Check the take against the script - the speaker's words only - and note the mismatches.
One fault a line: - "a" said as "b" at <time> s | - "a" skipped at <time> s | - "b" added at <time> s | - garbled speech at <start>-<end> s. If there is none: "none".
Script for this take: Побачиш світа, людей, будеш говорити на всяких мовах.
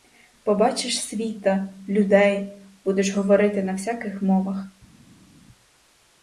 none